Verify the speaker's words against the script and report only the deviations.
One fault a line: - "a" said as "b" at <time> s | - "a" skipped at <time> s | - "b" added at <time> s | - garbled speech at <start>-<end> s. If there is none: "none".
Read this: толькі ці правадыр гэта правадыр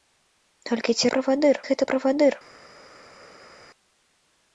none